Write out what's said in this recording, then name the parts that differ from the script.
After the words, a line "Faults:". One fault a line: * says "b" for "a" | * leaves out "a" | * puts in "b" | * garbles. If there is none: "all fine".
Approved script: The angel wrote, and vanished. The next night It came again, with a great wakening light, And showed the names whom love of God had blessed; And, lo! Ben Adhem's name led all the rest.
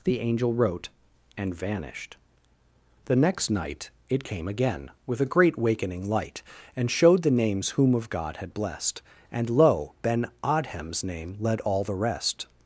The angel wrote, and vanished. The next night It came again, with a great wakening light, And showed the names whom of God had blessed; And, lo! Ben Adhem's name led all the rest.
Faults:
* leaves out "love"